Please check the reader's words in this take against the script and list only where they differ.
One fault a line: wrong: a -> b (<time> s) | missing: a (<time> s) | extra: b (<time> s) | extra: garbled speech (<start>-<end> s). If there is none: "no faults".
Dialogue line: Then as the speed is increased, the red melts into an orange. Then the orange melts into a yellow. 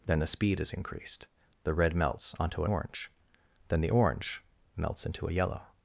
missing: as (0.2 s)
wrong: into -> onto (2.4 s)